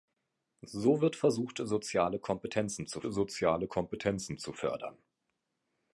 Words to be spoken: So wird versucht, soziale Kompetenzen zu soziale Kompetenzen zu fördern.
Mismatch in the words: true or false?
false